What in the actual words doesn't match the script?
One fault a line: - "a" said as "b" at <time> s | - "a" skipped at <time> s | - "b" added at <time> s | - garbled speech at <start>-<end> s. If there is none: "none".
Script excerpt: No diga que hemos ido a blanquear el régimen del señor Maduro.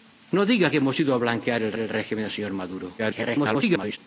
- "el" added at 1.8 s
- garbled speech at 3.0-4.0 s